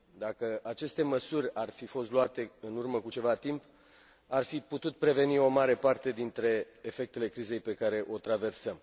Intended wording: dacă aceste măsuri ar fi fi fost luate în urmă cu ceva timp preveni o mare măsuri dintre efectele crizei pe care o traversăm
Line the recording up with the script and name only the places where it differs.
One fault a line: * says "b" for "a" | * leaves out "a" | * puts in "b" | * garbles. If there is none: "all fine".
* leaves out "fi"
* puts in "ar fi putut"
* says "parte" for "măsuri"